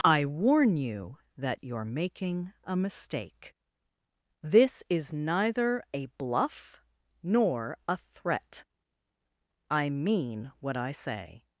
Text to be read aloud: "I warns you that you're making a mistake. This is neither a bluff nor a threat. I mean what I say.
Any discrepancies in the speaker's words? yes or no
yes